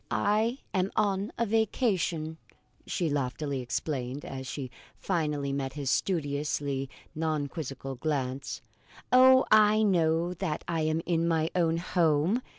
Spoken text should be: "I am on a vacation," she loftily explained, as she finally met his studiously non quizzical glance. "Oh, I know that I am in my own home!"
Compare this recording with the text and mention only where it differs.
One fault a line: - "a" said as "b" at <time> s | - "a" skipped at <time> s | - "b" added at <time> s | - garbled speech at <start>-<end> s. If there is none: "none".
none